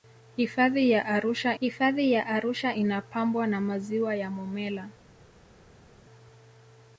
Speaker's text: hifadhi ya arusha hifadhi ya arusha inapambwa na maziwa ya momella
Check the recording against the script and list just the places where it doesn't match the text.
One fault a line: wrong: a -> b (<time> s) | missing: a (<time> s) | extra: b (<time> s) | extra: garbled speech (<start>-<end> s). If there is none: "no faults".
no faults